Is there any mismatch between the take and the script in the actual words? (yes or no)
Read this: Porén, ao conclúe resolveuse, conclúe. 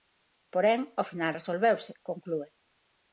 yes